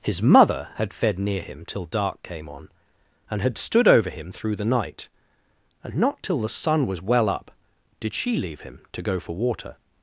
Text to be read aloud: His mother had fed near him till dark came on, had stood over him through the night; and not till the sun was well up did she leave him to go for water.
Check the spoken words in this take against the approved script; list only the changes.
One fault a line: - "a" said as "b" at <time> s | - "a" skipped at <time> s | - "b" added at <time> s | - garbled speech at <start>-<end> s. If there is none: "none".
- "and" added at 3.3 s